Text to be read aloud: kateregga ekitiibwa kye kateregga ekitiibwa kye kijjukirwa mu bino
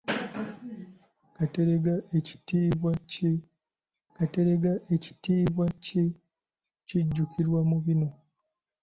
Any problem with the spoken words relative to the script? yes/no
no